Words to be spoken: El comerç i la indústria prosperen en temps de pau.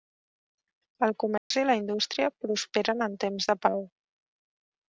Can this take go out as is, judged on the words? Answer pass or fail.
pass